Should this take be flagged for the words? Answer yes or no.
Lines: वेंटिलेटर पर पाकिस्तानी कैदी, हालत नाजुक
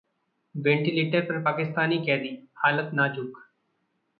no